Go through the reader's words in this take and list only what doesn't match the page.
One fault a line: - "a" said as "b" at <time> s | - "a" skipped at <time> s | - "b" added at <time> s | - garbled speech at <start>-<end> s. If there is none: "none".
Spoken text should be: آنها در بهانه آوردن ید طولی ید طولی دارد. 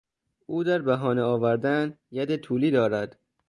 - "آنها" said as "او" at 0.5 s
- "ید طولی" skipped at 2.7 s